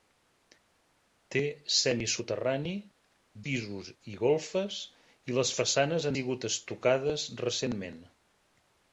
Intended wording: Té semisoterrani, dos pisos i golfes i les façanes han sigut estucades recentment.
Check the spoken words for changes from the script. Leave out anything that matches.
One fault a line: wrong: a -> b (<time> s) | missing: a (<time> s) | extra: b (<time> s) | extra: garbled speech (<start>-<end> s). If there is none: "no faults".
missing: dos (2.7 s)
missing: han (6.1 s)